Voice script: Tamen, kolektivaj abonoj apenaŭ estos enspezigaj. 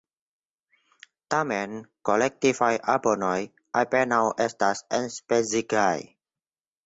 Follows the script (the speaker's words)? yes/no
no